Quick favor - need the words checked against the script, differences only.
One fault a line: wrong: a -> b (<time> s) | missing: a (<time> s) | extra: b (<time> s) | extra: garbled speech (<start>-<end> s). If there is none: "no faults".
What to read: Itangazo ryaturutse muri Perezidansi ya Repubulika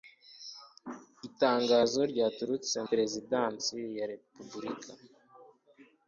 missing: muri (2.8 s)